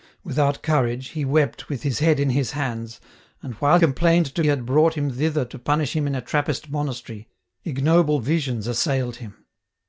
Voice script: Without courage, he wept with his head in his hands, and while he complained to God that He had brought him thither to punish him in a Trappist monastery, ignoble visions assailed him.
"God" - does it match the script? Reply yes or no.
no